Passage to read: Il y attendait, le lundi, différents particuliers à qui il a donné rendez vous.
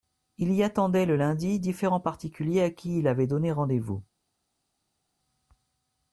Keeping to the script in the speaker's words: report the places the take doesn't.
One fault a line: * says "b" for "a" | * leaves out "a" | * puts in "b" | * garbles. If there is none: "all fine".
* says "avait" for "a"